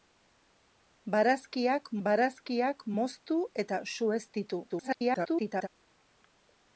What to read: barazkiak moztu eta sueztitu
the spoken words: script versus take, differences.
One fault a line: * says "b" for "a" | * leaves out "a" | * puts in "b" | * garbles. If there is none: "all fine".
* puts in "barazkiak"
* garbles